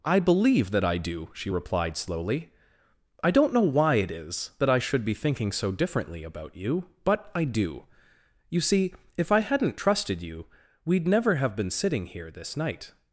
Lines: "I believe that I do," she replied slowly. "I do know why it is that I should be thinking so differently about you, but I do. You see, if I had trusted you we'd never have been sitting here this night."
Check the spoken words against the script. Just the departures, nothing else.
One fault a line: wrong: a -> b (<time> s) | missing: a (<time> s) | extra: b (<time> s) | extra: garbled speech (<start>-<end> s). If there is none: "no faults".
wrong: do -> don't (3.3 s)
wrong: had -> hadn't (9.4 s)